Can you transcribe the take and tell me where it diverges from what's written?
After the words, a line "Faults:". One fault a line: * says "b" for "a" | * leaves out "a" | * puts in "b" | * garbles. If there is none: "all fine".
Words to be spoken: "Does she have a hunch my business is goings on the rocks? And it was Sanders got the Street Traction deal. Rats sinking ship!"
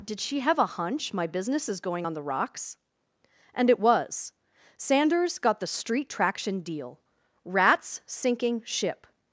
"Did she have a hunch my business is going on the rocks? And it was Sanders got the Street Traction deal. Rats sinking ship!"
Faults:
* says "Did" for "Does"
* says "going" for "goings"